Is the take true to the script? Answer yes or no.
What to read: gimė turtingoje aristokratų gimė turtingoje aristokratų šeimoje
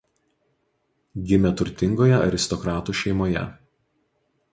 no